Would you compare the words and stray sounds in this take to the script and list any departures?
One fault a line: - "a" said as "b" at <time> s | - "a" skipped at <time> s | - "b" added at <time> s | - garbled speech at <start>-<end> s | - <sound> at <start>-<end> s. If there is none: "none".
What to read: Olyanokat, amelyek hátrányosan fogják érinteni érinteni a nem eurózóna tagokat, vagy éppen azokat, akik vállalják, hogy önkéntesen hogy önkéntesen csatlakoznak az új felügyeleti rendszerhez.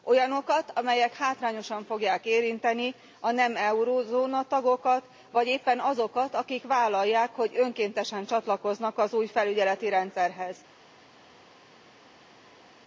- "érinteni" skipped at 2.9 s
- "hogy önkéntesen" skipped at 8.2 s